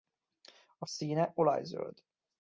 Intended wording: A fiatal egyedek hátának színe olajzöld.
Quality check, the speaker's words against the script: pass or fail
fail